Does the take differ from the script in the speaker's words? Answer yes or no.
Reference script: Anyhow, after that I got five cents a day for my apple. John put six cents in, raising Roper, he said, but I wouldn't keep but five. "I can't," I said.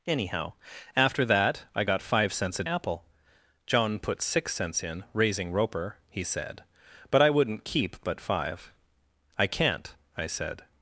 yes